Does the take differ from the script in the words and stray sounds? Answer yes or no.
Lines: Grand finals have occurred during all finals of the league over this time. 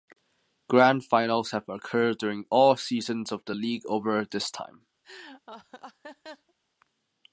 yes